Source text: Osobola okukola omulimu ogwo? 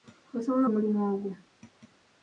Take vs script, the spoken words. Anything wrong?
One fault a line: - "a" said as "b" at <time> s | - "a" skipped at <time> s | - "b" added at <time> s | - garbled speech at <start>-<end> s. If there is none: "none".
- "okukola" skipped at 0.7 s